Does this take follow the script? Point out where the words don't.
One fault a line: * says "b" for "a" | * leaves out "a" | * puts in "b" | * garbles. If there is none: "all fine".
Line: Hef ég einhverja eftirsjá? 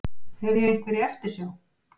all fine